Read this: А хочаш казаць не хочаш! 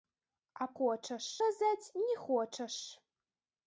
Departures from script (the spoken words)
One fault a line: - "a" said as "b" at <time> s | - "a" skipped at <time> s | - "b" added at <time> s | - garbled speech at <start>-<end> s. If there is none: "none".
none